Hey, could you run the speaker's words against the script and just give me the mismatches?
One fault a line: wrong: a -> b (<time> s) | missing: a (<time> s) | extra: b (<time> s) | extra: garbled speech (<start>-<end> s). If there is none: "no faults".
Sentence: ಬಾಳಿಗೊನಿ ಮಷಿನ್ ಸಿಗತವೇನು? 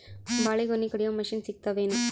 extra: ಕಡಿಯು (0.9 s)